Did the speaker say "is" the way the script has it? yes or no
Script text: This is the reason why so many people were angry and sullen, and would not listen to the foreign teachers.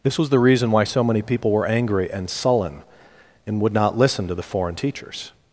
no